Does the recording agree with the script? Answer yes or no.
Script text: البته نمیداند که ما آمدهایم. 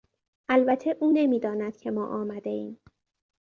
no